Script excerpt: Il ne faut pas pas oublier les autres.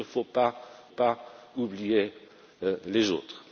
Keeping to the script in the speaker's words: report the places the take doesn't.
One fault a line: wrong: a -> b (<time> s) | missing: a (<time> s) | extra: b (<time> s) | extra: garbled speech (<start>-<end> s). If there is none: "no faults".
no faults